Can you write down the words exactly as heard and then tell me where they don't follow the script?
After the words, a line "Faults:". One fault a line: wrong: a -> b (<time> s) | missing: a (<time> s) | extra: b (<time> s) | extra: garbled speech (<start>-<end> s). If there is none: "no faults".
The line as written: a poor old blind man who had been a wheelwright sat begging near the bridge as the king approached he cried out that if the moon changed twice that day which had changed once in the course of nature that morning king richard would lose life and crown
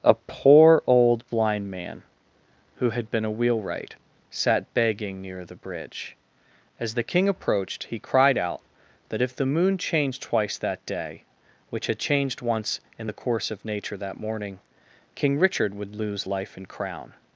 a poor old blind man who had been a wheelwright sat begging near the bridge as the king approached he cried out that if the moon changed twice that day which had changed once in the course of nature that morning king richard would lose life and crown
Faults:
no faults